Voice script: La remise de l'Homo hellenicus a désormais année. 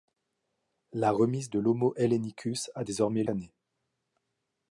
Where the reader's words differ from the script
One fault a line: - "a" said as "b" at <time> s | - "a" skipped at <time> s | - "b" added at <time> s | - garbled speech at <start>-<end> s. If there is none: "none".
none